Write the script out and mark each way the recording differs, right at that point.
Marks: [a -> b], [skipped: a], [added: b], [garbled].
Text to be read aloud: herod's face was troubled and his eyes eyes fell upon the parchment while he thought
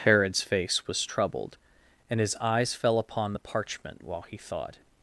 herod's face was troubled and his eyes [skipped: eyes] fell upon the parchment while he thought